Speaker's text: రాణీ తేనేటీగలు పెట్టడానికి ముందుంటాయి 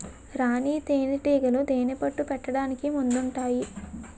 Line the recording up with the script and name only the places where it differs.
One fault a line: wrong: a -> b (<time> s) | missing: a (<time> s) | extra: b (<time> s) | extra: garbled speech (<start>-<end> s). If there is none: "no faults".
extra: తేనెపట్టు (1.6 s)